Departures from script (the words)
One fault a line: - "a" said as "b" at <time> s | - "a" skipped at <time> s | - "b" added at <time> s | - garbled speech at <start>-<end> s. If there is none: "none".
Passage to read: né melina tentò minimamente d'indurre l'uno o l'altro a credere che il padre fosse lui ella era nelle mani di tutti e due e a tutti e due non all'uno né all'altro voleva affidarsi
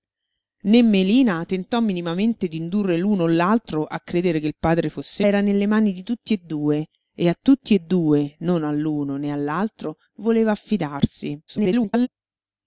- "lui ella" skipped at 5.2 s
- garbled speech at 11.5-12.1 s